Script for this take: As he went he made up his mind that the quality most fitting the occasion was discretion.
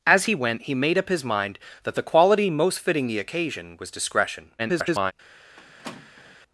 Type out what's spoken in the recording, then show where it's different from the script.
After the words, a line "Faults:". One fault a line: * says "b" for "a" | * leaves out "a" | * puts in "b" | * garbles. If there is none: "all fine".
As he went he made up his mind that the quality most fitting the occasion was discretion. [garbled]
Faults:
* garbles